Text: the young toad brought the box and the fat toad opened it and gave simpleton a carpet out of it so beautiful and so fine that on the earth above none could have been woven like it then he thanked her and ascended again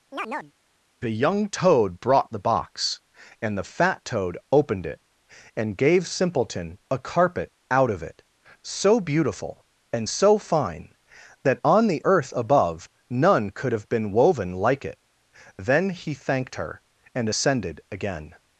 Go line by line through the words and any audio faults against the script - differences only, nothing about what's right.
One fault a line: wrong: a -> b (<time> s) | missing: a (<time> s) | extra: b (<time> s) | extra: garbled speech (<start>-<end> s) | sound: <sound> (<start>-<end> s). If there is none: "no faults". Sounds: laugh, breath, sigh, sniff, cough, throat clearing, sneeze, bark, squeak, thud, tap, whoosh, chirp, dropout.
sound: chirp (0.1-0.5 s)